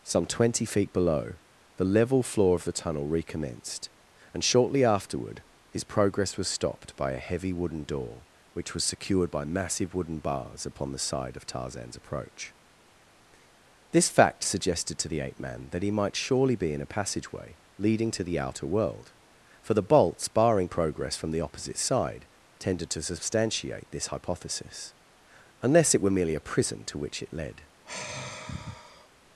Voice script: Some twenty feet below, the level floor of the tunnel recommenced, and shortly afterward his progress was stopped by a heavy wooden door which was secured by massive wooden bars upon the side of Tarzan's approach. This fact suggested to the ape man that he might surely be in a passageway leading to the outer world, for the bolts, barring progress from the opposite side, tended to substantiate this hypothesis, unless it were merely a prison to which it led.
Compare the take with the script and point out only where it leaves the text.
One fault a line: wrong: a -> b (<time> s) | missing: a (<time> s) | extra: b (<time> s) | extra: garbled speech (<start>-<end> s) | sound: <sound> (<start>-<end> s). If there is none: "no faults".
sound: sigh (27.8-29.1 s)